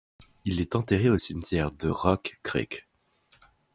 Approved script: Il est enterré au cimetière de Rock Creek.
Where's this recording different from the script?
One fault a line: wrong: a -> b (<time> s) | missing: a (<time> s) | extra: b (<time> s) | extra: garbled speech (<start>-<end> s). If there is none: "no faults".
no faults